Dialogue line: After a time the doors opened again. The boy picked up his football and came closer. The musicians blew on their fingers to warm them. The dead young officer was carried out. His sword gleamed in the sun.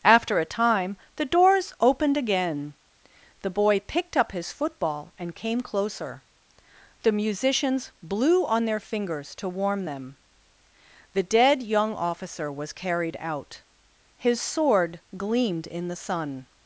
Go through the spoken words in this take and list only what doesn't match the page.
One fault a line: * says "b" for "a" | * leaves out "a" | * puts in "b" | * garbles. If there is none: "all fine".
all fine